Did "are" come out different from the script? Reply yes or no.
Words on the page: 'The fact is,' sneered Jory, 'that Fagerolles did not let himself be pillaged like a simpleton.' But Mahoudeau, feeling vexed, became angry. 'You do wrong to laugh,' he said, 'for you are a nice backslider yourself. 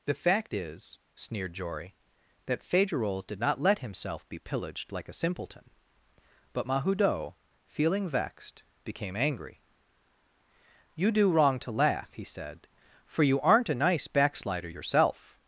yes